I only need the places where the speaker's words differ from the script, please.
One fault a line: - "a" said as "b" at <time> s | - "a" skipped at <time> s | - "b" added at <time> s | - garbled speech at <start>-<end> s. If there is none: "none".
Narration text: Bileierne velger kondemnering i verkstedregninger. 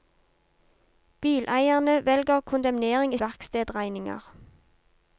none